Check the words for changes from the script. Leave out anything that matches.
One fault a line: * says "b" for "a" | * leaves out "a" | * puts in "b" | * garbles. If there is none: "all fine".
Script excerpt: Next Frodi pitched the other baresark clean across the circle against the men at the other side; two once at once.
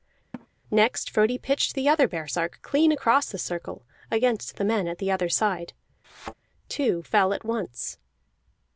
* says "fell" for "once"